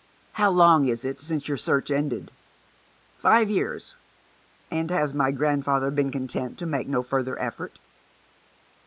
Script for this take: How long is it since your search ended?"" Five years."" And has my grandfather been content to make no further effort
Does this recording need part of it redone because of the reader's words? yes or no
no